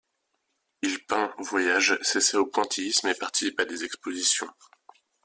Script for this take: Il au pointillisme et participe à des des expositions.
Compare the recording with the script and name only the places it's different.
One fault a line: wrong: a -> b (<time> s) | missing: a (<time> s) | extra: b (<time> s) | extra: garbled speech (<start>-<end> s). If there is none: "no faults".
extra: peint voyage s'essaie (1.1 s)
missing: des (3.8 s)